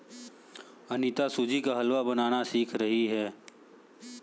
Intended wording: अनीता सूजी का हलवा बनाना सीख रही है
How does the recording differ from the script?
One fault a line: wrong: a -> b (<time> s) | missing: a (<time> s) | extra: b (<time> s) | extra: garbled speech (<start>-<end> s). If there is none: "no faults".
no faults